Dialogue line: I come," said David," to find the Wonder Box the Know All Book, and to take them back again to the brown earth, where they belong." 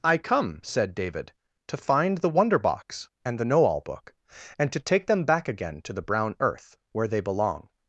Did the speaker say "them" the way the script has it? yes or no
yes